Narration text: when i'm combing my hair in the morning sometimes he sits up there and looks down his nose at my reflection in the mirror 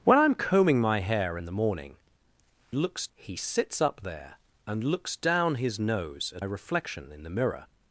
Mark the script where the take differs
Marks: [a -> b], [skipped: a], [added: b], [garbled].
when i'm combing my hair in the morning [sometimes -> looks] he sits up there and looks down his nose at [skipped: my] reflection in the mirror